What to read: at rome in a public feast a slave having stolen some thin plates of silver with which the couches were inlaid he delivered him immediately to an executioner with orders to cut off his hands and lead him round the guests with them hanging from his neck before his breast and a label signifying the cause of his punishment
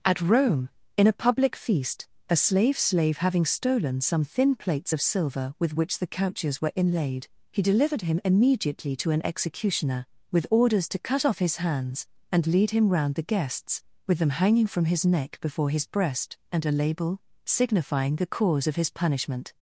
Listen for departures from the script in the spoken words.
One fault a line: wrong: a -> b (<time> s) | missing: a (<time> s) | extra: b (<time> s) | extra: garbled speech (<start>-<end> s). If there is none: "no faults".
extra: slave (2.8 s)